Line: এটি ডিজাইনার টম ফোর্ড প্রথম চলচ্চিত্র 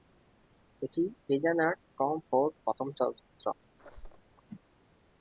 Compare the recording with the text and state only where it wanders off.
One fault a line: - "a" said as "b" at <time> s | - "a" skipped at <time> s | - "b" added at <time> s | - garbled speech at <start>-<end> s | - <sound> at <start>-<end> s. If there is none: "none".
- squeak at 3.8-4.3 s